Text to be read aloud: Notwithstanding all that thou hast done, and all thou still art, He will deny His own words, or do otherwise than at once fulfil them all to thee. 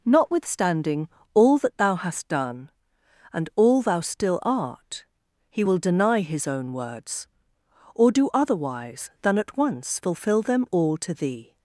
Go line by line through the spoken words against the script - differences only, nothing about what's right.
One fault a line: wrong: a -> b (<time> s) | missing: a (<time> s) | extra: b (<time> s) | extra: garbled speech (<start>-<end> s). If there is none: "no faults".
no faults